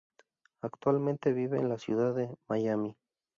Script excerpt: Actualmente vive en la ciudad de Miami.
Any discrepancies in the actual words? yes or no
no